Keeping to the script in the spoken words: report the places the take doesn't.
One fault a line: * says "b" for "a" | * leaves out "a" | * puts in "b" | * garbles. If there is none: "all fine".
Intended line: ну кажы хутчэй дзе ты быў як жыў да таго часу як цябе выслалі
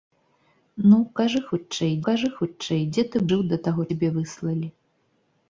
* puts in "кажы хутчэй"
* leaves out "быў як"
* leaves out "часу як"